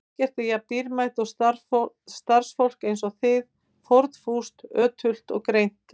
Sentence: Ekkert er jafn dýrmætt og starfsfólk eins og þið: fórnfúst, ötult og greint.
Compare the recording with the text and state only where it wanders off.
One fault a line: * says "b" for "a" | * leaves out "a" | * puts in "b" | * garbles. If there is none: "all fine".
all fine